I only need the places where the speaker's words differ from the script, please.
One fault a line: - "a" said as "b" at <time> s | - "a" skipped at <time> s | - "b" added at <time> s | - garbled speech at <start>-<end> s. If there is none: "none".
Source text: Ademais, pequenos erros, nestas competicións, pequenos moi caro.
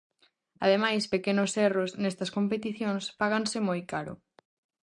- "pequenos" said as "páganse" at 3.2 s